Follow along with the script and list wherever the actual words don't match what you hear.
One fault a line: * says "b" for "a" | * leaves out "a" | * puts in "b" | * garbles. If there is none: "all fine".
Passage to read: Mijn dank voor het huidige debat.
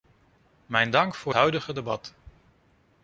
* leaves out "het"